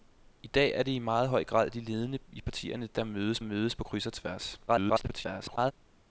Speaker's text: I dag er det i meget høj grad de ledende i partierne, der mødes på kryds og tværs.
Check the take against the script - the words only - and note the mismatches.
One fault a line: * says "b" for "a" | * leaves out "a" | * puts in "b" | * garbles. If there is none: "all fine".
* puts in "mødes"
* garbles